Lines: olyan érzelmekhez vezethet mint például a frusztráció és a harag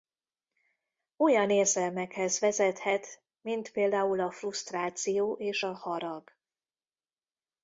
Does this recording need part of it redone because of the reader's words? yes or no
no